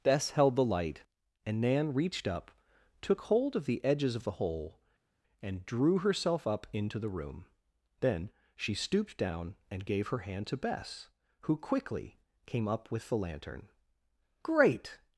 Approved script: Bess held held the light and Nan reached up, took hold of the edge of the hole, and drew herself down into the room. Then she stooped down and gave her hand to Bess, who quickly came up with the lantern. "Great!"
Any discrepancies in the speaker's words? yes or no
yes